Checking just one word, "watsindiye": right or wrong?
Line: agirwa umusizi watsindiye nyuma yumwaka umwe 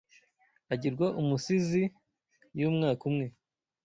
wrong